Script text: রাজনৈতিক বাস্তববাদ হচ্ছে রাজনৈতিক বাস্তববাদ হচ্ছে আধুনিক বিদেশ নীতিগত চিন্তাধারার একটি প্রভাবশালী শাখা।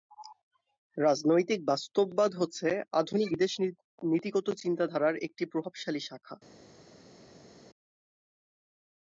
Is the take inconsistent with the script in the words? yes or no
yes